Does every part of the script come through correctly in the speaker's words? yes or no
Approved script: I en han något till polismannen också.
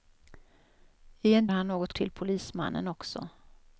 yes